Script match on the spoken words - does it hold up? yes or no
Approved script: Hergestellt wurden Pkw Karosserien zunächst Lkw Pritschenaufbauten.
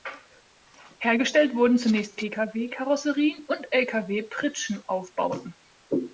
no